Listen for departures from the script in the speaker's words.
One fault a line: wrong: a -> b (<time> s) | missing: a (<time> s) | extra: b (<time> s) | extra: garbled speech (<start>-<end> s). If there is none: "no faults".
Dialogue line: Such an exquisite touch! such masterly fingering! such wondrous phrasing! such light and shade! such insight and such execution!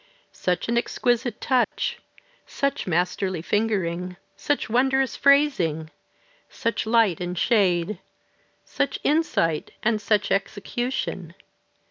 no faults